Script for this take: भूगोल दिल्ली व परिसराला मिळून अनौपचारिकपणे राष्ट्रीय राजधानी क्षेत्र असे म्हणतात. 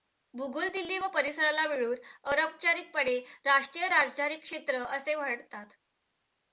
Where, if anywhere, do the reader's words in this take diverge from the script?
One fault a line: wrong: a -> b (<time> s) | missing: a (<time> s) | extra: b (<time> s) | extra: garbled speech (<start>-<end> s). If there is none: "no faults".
no faults